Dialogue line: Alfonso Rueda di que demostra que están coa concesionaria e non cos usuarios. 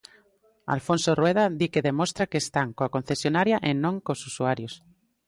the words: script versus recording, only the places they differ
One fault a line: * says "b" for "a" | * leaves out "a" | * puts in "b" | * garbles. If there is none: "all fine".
all fine